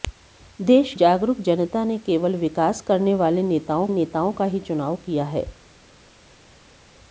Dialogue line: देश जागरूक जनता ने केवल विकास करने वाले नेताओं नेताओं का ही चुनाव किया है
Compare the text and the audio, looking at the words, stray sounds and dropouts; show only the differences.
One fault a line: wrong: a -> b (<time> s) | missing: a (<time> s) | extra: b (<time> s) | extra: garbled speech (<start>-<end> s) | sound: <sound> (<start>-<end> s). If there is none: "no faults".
no faults